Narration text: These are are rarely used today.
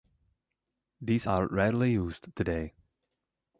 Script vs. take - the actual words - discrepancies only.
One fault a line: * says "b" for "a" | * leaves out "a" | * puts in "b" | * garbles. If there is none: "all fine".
* leaves out "are"